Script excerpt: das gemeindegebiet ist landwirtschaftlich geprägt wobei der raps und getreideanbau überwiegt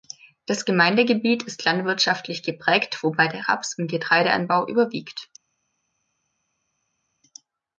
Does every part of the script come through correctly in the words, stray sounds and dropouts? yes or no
yes